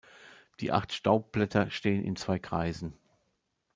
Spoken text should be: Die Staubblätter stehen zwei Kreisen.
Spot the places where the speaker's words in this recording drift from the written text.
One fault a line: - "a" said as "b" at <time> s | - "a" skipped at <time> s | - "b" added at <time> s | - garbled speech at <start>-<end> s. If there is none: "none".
- "acht" added at 0.7 s
- "in" added at 2.0 s